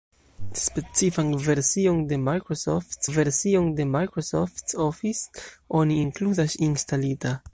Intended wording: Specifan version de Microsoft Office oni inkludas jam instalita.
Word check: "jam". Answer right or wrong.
wrong